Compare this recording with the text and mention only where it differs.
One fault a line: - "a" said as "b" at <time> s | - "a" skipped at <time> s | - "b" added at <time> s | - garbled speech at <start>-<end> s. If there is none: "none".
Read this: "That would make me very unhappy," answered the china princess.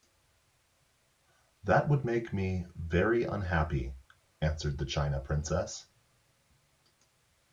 none